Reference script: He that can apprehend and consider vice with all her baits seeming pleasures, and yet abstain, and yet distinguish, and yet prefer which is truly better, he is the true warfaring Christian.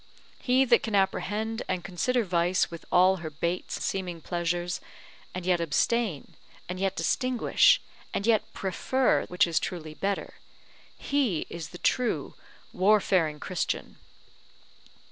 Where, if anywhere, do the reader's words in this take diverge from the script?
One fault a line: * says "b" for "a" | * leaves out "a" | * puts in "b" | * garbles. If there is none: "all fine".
all fine